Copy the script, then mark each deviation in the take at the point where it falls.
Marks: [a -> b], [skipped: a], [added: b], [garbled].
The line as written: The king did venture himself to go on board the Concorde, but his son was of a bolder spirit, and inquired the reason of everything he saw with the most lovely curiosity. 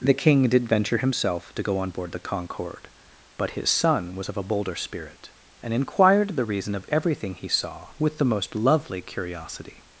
The king did venture himself to go on board the Concorde, but his son was of a bolder spirit, and inquired the reason of everything he saw with the most lovely curiosity.